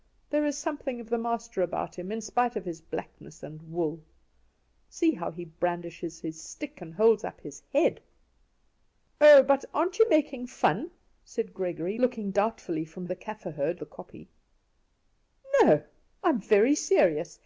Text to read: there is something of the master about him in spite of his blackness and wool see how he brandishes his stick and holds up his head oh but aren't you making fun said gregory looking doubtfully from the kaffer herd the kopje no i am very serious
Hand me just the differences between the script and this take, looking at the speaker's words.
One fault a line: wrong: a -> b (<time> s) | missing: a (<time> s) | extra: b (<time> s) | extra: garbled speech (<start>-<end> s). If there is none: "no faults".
no faults